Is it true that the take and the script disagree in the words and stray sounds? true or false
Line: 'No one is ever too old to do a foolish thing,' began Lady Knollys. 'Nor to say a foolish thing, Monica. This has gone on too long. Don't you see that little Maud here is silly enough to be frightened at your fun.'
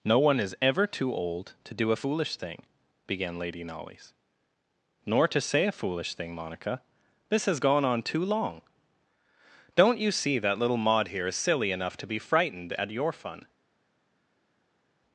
false